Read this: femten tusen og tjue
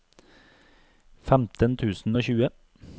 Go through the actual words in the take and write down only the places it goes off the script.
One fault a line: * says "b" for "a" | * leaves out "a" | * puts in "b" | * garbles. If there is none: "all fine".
all fine